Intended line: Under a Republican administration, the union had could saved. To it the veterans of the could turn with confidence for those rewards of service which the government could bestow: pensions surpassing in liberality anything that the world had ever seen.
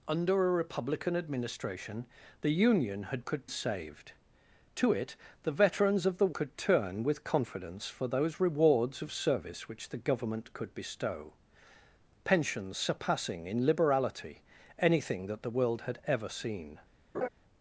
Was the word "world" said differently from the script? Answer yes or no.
no